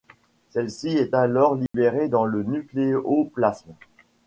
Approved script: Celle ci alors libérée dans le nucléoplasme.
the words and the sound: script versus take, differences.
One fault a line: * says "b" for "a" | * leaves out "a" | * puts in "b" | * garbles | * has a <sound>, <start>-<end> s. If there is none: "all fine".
* puts in "est"
* has a dropout, 1.7-1.7 s